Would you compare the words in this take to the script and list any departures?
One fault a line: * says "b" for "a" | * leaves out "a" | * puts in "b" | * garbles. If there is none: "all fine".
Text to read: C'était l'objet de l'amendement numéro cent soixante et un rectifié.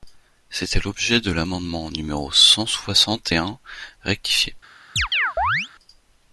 all fine